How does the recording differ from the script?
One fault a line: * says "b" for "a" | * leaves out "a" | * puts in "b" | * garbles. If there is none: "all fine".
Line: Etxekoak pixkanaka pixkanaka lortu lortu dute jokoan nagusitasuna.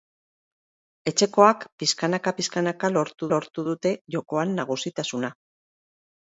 all fine